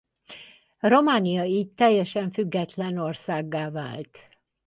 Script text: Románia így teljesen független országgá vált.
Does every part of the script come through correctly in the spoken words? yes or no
yes